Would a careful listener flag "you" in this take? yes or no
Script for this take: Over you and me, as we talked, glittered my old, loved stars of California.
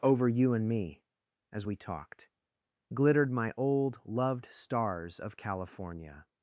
no